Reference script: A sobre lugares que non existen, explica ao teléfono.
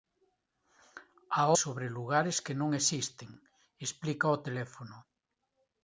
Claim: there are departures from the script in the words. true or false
false